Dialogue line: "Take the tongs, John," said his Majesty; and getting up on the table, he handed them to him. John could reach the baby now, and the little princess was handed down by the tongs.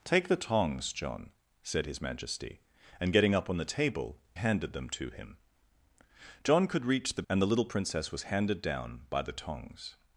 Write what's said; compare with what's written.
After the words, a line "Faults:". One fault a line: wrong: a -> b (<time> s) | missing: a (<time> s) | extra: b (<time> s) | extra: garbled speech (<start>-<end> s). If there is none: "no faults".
"Take the tongs, John," said his Majesty; and getting up on the table, handed them to him. John could reach the and the little princess was handed down by the tongs.
Faults:
missing: he (4.2 s)
missing: baby now (7.2 s)